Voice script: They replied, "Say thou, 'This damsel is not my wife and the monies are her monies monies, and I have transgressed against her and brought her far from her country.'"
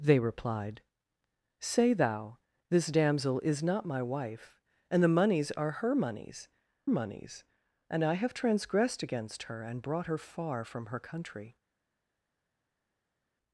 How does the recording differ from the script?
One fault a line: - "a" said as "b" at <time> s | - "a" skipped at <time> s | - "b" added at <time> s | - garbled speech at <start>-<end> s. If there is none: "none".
none